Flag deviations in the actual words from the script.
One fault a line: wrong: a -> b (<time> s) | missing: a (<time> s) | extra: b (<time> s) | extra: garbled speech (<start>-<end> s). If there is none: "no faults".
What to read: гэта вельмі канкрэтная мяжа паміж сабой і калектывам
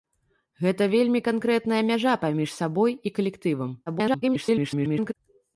extra: garbled speech (3.9-5.1 s)